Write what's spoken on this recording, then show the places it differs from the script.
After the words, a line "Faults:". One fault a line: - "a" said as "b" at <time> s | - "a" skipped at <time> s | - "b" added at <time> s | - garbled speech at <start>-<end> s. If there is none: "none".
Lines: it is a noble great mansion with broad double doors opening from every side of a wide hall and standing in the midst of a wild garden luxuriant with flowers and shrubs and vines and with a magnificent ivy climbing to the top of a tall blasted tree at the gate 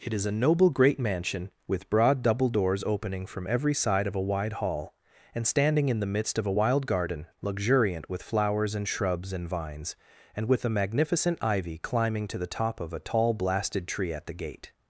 it is a noble great mansion with broad double doors opening from every side of a wide hall and standing in the midst of a wild garden luxuriant with flowers and shrubs and vines and with a magnificent ivy climbing to the top of a tall blasted tree at the gate
Faults:
none